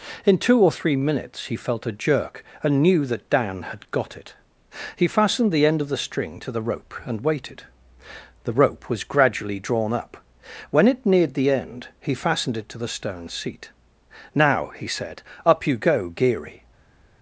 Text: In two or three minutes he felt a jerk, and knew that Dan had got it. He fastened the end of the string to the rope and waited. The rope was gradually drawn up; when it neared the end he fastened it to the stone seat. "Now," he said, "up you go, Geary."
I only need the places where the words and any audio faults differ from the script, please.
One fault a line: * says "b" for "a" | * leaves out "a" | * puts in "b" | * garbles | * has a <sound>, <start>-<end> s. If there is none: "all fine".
all fine